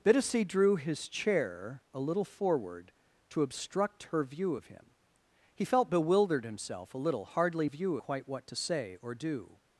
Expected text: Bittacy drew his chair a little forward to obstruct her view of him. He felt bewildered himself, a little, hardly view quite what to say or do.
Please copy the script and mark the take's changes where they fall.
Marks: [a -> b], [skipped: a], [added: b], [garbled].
Bittacy drew his chair a little forward to obstruct her view of him. He felt bewildered himself, a little, hardly view quite what to say or do.